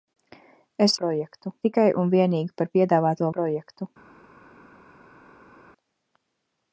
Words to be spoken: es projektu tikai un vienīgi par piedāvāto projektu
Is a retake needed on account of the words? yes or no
no